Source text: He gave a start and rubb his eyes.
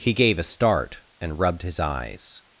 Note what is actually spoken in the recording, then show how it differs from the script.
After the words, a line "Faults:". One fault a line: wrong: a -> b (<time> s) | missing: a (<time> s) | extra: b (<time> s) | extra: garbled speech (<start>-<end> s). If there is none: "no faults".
He gave a start and rubbed his eyes.
Faults:
wrong: rubb -> rubbed (1.4 s)